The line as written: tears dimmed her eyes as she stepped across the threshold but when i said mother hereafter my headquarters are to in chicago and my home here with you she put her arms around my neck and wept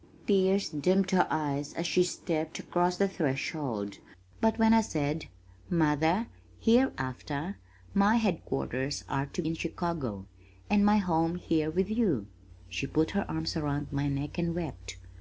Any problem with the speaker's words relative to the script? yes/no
no